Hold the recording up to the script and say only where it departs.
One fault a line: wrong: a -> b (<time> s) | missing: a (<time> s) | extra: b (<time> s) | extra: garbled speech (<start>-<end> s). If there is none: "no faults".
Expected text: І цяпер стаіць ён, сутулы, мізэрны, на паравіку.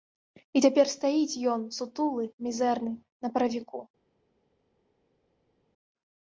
no faults